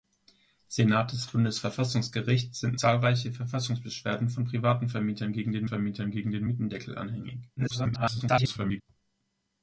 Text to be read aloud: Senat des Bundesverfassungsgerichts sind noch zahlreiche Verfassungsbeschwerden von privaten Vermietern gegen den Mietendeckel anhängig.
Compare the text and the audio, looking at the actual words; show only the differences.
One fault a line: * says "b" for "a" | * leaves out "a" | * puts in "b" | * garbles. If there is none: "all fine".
* leaves out "noch"
* puts in "Vermietern gegen den"
* garbles